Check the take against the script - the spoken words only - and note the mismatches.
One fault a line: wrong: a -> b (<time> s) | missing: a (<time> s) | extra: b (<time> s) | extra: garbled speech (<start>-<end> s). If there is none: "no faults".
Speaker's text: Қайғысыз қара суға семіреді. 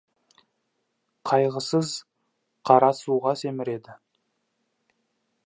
no faults